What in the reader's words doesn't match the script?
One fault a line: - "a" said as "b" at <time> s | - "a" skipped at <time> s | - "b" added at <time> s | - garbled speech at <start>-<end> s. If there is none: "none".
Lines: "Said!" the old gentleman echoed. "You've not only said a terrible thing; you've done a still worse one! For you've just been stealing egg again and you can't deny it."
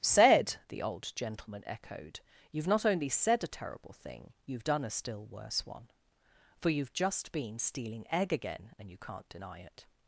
none